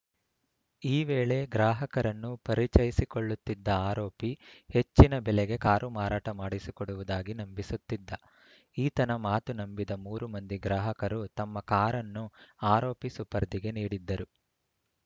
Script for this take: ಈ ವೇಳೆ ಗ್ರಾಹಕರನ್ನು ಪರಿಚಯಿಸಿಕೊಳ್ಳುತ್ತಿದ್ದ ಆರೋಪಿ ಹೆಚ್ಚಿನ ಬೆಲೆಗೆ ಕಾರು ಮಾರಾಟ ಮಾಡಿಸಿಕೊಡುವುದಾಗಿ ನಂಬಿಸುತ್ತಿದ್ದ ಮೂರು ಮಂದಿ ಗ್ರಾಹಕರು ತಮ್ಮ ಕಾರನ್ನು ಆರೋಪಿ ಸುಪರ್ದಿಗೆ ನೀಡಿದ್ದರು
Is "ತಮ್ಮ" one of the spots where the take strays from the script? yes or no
no